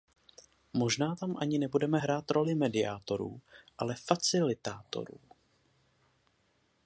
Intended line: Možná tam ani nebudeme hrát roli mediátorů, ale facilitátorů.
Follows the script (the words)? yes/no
yes